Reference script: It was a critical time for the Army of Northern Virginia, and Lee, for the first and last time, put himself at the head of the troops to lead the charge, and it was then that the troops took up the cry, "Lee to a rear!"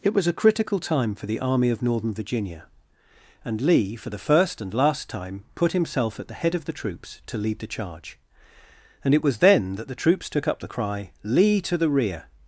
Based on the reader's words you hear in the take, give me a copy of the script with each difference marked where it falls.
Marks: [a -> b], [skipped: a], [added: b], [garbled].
It was a critical time for the Army of Northern Virginia, and Lee, for the first and last time, put himself at the head of the troops to lead the charge, and it was then that the troops took up the cry, "Lee to [a -> the] rear!"